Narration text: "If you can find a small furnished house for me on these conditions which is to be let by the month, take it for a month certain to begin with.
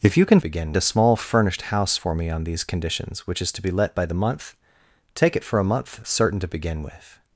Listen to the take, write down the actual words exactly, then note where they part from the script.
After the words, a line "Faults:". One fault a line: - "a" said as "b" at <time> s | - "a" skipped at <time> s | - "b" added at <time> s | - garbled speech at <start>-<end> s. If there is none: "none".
"If you can begin a small furnished house for me on these conditions which is to be let by the month, take it for a month certain to begin with.
Faults:
- "find" said as "begin" at 0.4 s